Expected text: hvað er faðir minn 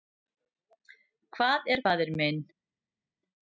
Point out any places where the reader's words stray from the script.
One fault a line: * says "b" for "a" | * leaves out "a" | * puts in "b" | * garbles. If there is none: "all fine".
all fine